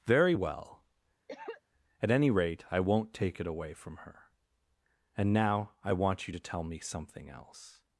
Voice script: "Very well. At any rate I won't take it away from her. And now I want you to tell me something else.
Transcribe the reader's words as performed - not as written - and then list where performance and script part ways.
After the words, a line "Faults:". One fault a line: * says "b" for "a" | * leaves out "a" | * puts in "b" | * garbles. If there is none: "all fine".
"Very well. At any rate I won't take it away from her. And now I want you to tell me something else.
Faults:
all fine